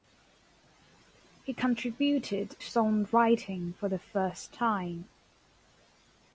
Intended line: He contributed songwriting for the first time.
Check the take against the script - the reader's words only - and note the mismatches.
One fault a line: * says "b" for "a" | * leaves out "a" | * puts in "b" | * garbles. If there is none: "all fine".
all fine